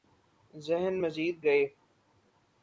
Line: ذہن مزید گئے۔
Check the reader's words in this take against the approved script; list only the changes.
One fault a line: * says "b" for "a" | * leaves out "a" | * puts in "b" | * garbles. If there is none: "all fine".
all fine